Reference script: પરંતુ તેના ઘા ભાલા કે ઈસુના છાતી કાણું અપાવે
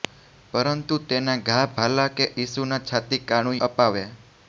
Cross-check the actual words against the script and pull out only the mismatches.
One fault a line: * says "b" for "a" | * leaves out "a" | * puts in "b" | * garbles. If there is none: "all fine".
all fine